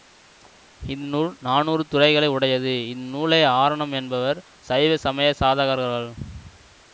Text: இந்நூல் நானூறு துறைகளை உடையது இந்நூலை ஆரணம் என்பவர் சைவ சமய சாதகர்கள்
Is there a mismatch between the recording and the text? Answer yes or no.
no